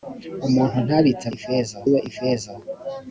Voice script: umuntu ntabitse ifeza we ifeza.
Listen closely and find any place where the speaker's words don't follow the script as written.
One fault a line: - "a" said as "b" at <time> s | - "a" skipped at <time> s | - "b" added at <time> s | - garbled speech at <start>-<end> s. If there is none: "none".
none